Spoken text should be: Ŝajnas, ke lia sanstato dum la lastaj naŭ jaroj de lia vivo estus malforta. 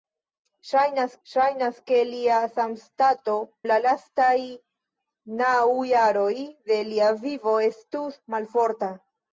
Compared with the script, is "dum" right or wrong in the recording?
wrong